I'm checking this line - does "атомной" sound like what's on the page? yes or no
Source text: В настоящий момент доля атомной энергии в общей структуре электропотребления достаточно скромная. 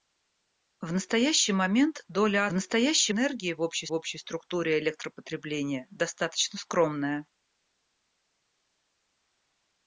no